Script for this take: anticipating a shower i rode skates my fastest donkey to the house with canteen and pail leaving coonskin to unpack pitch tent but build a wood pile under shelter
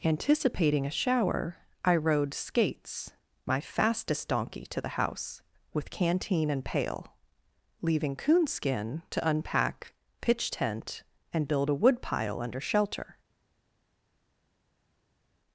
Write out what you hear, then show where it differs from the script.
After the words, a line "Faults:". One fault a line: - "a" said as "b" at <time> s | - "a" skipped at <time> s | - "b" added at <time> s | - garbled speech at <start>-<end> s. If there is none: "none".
anticipating a shower i rode skates my fastest donkey to the house with canteen and pail leaving coonskin to unpack pitch tent and build a wood pile under shelter
Faults:
- "but" said as "and" at 11.3 s